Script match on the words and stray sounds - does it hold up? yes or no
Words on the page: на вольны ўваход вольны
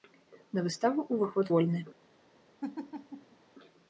no